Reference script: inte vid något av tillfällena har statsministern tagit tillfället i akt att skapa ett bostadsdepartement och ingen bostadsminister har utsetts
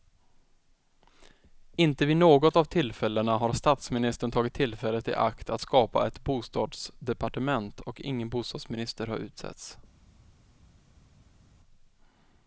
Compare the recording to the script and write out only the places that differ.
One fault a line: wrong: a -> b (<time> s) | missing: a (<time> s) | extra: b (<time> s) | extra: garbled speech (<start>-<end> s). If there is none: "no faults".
no faults